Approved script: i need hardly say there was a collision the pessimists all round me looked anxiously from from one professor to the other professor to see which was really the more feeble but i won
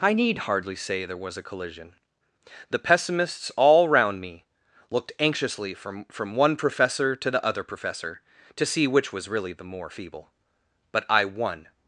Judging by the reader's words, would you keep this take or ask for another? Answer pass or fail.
pass